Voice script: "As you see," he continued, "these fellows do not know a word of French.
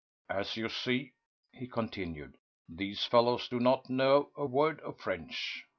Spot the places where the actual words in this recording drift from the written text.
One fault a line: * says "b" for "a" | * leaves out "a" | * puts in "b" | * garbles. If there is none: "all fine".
all fine